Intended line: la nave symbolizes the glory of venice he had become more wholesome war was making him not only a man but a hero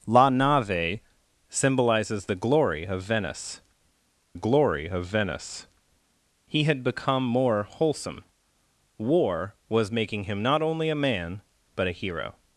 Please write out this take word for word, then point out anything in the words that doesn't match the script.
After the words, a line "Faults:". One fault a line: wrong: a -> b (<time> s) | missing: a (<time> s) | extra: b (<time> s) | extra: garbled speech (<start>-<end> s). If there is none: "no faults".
la nave symbolizes the glory of venice glory of venice he had become more wholesome war was making him not only a man but a hero
Faults:
extra: glory of venice (4.3 s)